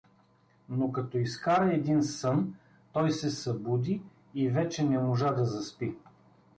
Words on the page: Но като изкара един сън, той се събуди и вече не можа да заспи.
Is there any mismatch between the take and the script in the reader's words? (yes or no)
no